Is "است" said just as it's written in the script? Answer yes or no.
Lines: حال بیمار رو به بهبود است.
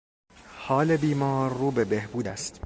yes